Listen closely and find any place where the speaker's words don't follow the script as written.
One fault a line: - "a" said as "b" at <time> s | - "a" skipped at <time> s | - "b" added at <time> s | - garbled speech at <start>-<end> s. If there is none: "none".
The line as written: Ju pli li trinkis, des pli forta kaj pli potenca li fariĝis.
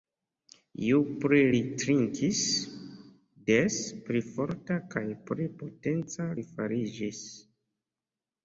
none